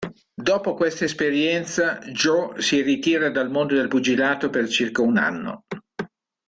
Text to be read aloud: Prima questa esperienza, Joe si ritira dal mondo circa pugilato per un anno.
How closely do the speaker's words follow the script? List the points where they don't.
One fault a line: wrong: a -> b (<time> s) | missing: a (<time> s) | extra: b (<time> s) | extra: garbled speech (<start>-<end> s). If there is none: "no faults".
wrong: Prima -> Dopo (0.3 s)
wrong: circa -> del (3.8 s)
extra: circa (4.7 s)